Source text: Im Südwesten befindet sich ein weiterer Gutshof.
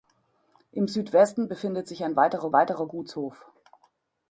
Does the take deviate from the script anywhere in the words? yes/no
yes